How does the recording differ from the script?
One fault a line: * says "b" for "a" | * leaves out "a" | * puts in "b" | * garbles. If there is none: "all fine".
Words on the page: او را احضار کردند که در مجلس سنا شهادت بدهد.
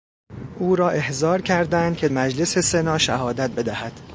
* leaves out "در"